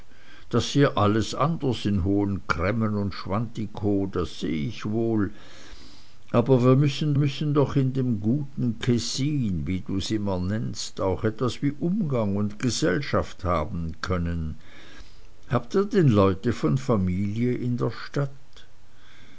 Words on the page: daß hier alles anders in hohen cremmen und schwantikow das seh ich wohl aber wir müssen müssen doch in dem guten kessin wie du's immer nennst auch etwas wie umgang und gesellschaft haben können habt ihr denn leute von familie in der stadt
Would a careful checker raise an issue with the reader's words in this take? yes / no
no